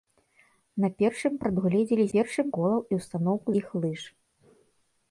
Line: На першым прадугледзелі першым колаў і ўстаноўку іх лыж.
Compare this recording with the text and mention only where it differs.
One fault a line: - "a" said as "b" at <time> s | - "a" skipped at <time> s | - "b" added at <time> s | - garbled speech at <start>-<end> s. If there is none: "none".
none